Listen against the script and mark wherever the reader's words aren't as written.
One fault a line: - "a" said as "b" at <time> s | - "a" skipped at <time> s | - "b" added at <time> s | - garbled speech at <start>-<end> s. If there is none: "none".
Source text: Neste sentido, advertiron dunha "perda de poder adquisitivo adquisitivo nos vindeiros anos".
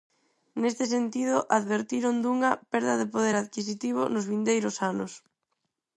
- "adquisitivo" skipped at 4.0 s